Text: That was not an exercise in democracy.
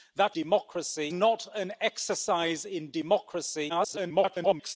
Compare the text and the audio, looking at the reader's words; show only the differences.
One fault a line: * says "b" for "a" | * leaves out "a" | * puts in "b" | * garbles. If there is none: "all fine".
* says "democracy" for "was"
* garbles